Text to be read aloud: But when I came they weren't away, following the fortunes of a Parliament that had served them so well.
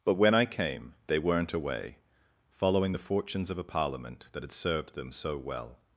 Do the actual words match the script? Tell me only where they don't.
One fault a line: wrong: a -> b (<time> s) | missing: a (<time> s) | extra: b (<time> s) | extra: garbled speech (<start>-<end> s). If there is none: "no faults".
no faults